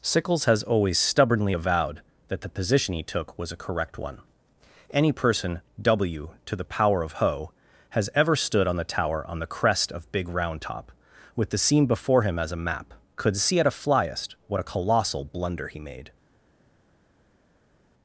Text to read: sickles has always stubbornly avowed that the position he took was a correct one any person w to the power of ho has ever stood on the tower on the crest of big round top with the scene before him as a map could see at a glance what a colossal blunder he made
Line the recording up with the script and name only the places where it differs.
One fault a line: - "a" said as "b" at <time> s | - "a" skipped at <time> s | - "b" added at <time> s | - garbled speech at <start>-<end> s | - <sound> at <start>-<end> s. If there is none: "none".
- "glance" said as "flyest" at 13.7 s